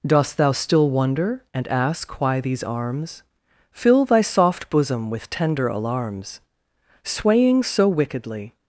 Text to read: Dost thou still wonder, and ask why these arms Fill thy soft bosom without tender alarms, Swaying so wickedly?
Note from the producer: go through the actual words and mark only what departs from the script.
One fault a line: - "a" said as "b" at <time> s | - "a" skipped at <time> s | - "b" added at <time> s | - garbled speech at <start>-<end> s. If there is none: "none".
- "without" said as "with" at 5.1 s